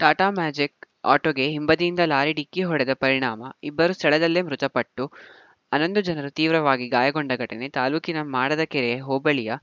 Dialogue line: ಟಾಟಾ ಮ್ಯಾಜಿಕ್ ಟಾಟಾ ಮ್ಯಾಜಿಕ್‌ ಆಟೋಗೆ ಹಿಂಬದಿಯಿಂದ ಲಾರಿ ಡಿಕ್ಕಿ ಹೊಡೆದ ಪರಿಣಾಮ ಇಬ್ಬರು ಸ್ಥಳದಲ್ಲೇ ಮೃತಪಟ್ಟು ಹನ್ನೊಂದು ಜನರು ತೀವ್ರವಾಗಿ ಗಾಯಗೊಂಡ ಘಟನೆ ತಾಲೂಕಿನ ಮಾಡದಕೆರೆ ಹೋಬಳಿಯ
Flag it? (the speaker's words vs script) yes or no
yes